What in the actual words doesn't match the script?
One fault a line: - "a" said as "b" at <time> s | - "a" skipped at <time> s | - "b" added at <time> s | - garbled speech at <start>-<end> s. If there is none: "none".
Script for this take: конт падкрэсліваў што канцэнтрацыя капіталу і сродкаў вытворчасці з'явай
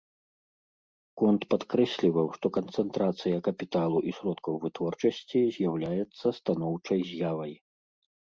- "з'яўляецца станоўчай" added at 5.6 s